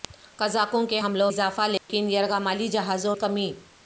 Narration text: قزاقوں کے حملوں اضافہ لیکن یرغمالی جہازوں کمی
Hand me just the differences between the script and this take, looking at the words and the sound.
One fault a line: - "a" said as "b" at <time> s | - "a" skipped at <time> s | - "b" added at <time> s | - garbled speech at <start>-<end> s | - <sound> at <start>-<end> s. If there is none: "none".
- dropout at 1.8-1.9 s